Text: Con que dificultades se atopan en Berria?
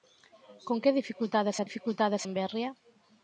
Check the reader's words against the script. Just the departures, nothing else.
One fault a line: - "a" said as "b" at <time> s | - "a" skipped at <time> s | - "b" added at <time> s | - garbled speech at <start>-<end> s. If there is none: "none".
- "atopan" said as "dificultades" at 1.6 s